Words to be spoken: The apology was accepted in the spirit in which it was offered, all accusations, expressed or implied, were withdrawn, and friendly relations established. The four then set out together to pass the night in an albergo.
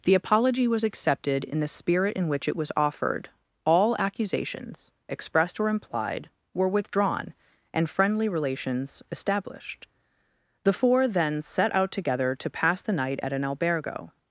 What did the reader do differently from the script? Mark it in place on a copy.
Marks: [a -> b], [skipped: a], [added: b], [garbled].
The apology was accepted in the spirit in which it was offered, all accusations, expressed or implied, were withdrawn, and friendly relations established. The four then set out together to pass the night [in -> at] an albergo.